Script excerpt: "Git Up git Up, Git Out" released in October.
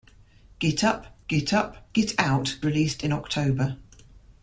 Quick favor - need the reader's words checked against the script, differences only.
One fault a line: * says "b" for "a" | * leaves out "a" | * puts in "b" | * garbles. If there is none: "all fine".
all fine